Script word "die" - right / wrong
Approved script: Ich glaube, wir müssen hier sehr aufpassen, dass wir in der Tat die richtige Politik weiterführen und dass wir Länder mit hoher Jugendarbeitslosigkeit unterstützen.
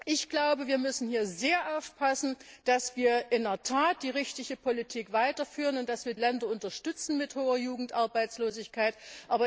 right